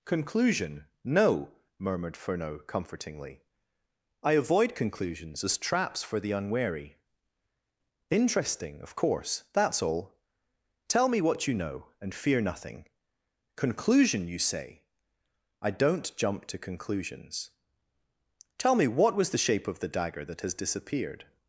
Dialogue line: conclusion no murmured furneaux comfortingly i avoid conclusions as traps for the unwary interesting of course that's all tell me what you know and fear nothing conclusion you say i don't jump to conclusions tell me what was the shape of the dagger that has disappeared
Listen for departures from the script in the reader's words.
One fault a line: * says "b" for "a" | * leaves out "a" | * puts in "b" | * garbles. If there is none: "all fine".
all fine